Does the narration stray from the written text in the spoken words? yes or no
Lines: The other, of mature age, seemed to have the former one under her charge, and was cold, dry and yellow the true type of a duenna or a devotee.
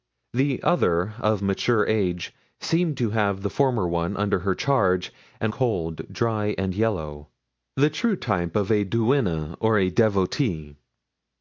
yes